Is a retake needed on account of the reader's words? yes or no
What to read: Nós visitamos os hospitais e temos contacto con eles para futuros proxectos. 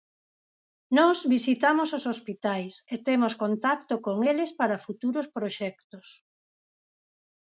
no